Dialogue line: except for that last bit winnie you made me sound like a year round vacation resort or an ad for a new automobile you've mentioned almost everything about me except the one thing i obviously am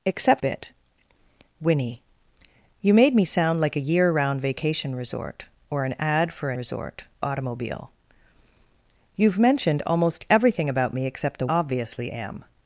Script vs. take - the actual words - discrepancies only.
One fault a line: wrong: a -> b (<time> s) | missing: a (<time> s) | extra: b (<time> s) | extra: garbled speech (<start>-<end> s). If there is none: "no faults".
missing: for that last (0.4 s)
wrong: new -> resort (6.5 s)
missing: one thing i (11.5 s)